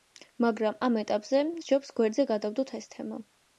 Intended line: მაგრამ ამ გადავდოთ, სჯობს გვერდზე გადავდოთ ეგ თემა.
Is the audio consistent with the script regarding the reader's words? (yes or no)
no